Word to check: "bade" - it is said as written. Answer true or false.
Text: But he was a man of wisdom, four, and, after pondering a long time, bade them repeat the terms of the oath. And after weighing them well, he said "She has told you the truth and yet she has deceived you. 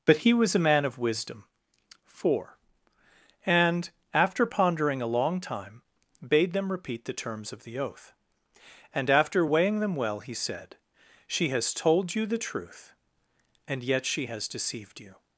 true